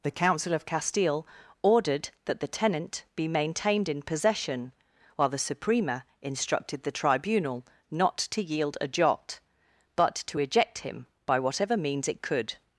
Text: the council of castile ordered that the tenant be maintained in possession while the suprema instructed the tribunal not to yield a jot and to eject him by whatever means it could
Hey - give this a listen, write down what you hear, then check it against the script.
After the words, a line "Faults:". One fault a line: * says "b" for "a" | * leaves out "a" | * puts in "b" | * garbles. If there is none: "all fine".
the council of castile ordered that the tenant be maintained in possession while the suprema instructed the tribunal not to yield a jot but to eject him by whatever means it could
Faults:
* says "but" for "and"